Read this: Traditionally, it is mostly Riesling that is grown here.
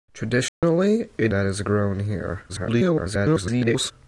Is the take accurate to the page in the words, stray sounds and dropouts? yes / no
no